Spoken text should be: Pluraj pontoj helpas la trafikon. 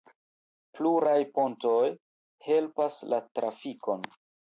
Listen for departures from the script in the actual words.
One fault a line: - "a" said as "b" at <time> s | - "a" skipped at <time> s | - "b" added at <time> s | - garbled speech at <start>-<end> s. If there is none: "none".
none